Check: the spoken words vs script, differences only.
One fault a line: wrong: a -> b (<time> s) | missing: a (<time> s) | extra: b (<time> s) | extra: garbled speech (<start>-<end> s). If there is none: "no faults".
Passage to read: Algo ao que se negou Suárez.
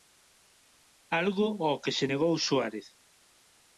no faults